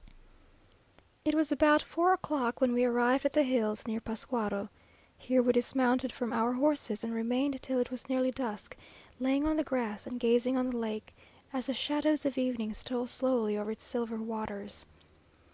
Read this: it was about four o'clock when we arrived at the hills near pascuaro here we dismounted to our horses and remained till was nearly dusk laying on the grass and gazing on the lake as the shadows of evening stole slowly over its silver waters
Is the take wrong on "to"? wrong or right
wrong